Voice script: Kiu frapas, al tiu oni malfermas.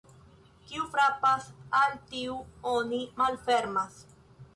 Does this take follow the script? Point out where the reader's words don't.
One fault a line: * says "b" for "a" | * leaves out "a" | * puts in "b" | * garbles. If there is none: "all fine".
all fine